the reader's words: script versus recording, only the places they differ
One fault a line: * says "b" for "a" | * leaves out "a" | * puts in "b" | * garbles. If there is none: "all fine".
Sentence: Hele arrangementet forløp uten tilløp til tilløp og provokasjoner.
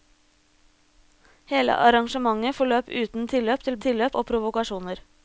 all fine